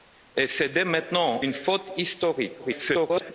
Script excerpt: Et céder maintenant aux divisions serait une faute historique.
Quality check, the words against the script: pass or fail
fail